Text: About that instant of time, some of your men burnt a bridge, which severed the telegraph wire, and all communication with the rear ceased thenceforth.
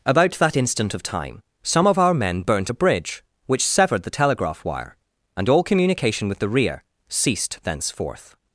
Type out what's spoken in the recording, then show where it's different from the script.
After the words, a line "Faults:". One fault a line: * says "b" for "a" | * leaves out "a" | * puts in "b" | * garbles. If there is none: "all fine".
About that instant of time, some of our men burnt a bridge, which severed the telegraph wire, and all communication with the rear ceased thenceforth.
Faults:
* says "our" for "your"